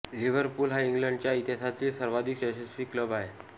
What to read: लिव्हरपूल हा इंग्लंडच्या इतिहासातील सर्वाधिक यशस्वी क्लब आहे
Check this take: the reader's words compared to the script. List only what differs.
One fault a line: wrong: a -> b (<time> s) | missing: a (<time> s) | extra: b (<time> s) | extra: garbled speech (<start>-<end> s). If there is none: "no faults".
no faults